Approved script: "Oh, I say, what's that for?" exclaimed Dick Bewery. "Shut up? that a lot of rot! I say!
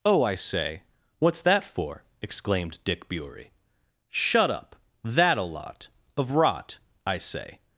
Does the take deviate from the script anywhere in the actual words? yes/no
no